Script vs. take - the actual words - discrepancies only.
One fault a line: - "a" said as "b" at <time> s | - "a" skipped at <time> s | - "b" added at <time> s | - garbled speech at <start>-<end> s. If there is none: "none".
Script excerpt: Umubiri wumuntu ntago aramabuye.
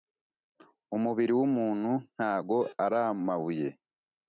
none